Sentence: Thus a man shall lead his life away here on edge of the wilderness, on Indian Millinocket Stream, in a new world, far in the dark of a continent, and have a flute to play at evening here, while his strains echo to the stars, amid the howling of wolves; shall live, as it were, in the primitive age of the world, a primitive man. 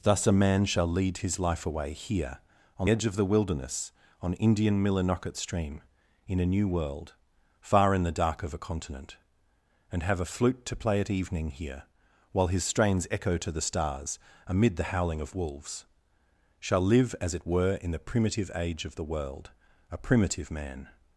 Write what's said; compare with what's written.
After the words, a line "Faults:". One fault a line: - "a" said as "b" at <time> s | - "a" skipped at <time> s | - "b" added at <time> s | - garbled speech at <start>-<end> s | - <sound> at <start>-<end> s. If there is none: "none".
Thus a man shall lead his life away here on edge of the wilderness, on Indian Millinocket Stream, in a new world, far in the dark of a continent, and have a flute to play at evening here, while his strains echo to the stars, amid the howling of wolves; shall live, as it were, in the primitive age of the world, a primitive man.
Faults:
none